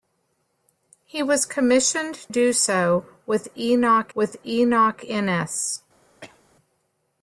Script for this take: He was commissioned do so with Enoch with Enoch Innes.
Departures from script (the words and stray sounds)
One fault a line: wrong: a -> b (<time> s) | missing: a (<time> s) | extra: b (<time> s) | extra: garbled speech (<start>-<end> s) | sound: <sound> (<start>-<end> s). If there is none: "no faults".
sound: cough (6.2-6.4 s)